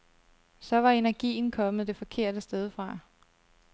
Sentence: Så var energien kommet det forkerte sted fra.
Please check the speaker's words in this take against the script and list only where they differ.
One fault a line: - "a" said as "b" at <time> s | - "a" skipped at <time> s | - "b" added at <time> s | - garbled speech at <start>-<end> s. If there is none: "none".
none